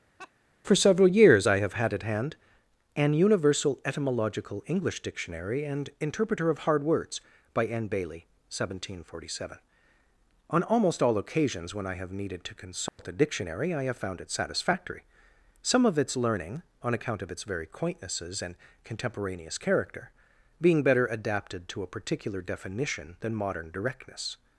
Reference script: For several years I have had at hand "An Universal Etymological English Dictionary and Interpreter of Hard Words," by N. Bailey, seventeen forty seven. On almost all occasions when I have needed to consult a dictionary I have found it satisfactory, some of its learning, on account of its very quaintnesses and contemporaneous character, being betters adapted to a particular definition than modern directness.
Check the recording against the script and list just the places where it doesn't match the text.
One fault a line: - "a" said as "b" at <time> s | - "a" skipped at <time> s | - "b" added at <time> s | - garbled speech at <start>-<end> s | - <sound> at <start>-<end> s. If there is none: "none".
- laugh at 0.2-0.3 s
- dropout at 12.9-13.0 s
- "betters" said as "better" at 20.8 s